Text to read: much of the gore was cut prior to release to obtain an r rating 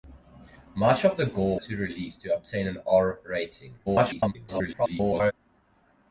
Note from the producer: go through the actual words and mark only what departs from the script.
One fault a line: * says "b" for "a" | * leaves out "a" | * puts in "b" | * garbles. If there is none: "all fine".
* leaves out "was cut prior"
* garbles